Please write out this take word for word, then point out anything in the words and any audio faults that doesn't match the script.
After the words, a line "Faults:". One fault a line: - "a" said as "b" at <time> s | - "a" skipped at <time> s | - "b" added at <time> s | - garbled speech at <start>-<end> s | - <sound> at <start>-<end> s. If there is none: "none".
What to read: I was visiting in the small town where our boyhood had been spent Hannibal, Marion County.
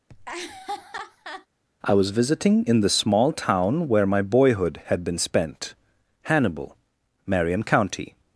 I was visiting in the small town where my boyhood had been spent Hannibal, Marion County.
Faults:
- laugh at 0.1-1.5 s
- "our" said as "my" at 4.0 s